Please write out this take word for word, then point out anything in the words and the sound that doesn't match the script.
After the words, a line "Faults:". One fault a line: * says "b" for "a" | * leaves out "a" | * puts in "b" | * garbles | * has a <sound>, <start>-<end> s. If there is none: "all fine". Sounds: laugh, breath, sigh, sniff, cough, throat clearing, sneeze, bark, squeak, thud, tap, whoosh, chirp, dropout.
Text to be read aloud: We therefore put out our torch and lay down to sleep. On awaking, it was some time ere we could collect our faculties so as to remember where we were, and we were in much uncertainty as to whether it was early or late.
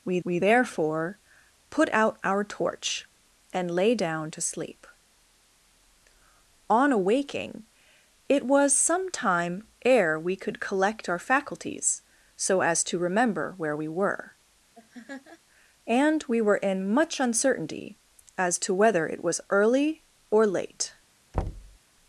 We we therefore put out our torch and lay down to sleep. On awaking, it was some time ere we could collect our faculties so as to remember where we were, and we were in much uncertainty as to whether it was early or late.
Faults:
* puts in "we"
* has a laugh, 14.7-15.4 s
* has a thud, 21.3-21.8 s